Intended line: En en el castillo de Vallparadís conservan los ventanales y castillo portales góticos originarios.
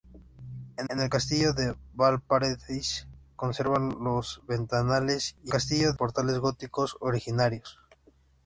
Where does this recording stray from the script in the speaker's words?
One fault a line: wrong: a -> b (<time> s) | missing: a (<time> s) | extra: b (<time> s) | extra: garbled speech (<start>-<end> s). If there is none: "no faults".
no faults